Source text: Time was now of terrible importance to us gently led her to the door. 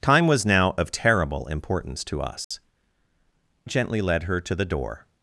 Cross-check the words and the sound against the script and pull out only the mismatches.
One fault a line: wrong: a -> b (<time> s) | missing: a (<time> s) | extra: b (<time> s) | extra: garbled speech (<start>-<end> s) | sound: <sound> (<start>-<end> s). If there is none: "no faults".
sound: dropout (2.4-2.5 s)